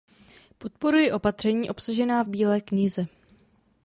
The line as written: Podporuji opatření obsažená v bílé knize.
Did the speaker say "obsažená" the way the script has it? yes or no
yes